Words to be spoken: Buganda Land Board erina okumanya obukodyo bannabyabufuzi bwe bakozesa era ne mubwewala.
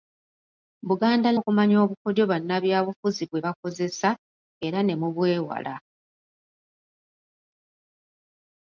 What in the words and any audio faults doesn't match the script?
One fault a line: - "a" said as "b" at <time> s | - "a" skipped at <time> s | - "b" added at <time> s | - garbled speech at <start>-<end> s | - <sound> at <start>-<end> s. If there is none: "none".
- "Land Board erina" skipped at 1.3 s